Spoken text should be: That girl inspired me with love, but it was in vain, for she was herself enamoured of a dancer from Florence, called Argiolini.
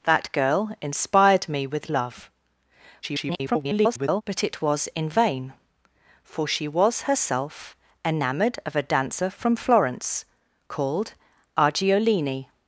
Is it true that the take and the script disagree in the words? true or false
true